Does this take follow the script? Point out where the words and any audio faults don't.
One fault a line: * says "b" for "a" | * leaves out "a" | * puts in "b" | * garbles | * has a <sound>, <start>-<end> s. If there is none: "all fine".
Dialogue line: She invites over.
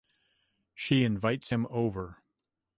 * puts in "him"